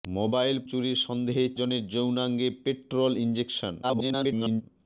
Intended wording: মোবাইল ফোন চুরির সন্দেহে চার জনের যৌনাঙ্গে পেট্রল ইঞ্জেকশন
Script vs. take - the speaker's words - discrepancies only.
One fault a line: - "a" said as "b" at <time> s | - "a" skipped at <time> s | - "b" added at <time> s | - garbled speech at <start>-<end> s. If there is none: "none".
- "ফোন" skipped at 0.6 s
- "চার" skipped at 1.4 s
- garbled speech at 3.8-4.6 s